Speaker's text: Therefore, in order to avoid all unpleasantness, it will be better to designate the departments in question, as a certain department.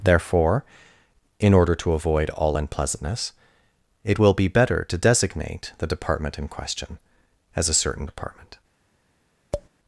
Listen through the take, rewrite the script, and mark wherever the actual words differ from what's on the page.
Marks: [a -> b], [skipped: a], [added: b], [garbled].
Therefore, in order to avoid all unpleasantness, it will be better to designate the [departments -> department] in question, as a certain department.